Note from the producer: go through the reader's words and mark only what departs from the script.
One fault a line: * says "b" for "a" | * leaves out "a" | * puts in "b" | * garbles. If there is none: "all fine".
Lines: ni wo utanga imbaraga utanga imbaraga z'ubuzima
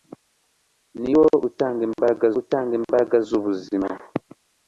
all fine